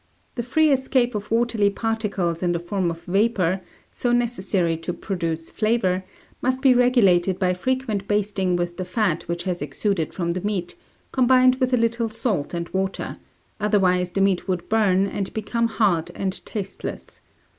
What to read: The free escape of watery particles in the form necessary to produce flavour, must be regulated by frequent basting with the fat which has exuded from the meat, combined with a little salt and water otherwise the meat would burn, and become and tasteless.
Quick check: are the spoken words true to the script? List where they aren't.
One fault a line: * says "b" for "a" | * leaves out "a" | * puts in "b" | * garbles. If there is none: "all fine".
* puts in "of vapour so"
* puts in "hard"